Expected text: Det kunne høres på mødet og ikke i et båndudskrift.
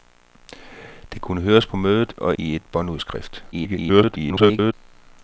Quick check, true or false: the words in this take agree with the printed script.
false